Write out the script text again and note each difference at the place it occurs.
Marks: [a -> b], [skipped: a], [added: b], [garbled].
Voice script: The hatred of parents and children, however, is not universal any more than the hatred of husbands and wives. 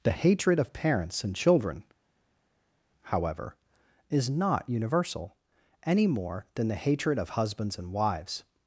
The hatred of parents and children, however, is not universal any more than the hatred of husbands and wives.